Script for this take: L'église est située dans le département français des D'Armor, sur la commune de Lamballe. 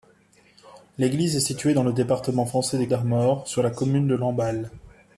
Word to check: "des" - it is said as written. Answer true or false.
true